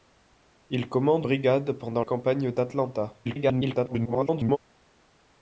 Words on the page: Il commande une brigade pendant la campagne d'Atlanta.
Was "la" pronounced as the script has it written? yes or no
no